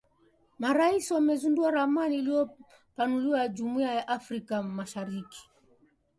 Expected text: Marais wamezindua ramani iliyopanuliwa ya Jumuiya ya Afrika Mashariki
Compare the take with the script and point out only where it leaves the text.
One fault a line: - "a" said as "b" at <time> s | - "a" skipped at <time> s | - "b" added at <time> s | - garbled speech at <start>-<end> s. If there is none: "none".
none